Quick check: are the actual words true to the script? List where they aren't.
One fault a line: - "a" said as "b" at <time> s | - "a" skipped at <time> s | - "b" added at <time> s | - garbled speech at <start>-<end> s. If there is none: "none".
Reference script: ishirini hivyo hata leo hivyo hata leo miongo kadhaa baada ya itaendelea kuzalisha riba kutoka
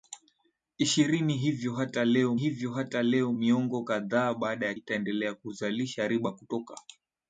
none